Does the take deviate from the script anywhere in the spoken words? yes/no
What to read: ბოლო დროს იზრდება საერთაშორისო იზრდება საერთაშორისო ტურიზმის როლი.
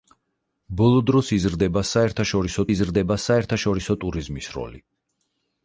no